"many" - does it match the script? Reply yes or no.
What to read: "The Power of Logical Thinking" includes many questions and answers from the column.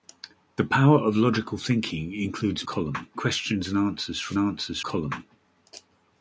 no